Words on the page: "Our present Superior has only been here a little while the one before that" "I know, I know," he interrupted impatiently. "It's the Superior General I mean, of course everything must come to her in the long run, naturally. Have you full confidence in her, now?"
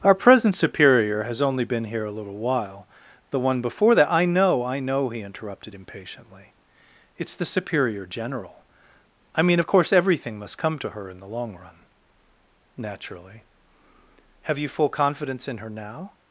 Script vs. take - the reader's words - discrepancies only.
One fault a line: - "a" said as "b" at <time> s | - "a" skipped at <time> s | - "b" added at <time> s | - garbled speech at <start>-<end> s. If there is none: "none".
none